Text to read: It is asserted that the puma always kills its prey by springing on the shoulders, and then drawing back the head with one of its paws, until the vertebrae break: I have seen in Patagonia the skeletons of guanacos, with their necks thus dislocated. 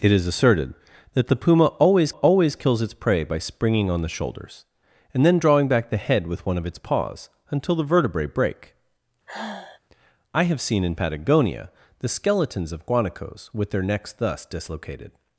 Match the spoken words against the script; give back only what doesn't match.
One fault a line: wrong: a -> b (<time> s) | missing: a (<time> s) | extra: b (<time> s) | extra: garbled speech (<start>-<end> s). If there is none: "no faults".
extra: always (2.1 s)